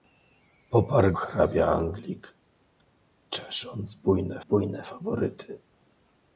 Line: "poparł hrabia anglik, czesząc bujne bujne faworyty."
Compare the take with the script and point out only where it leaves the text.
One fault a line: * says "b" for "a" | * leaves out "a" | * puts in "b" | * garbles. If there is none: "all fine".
all fine